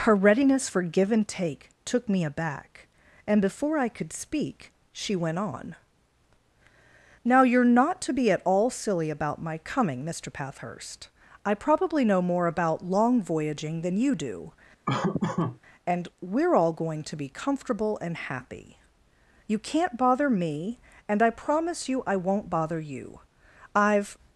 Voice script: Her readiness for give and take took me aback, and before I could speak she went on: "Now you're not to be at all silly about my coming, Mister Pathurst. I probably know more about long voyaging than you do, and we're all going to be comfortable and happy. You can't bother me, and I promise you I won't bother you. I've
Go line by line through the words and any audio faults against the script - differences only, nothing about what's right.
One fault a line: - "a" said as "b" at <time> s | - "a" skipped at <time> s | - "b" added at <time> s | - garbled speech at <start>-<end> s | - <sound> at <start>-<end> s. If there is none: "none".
- laugh at 14.9-15.6 s